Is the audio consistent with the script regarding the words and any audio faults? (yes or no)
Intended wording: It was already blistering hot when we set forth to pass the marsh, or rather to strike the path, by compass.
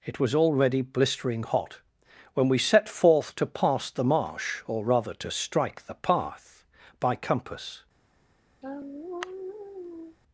no